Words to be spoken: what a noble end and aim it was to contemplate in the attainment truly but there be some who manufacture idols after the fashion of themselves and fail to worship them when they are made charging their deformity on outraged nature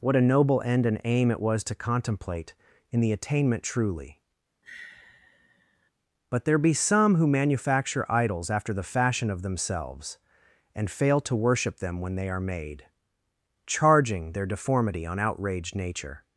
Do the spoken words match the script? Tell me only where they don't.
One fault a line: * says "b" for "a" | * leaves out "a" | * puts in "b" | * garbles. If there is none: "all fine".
all fine